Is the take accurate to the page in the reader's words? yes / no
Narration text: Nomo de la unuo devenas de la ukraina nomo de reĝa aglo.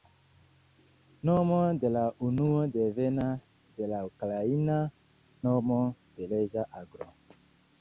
yes